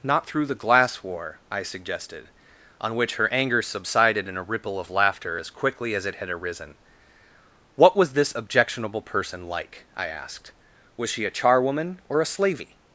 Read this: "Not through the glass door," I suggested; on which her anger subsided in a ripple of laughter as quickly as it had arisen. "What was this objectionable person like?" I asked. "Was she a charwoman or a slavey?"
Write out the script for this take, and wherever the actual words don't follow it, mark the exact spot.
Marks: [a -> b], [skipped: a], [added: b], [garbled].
"Not through the glass [door," -> war] I suggested; on which her anger subsided in a ripple of laughter as quickly as it had arisen. "What was this objectionable person like?" I asked. "Was she a charwoman or a slavey?"